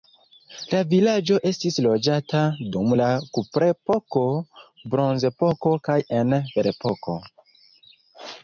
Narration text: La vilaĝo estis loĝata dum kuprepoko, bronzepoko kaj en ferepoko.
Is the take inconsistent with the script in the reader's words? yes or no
yes